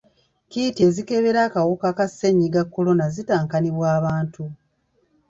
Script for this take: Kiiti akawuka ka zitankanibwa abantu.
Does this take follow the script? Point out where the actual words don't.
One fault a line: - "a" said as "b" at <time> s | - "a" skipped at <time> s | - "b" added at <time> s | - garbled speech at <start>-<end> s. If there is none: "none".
- "ezikebera" added at 0.9 s
- "ssennyiga kolona" added at 2.1 s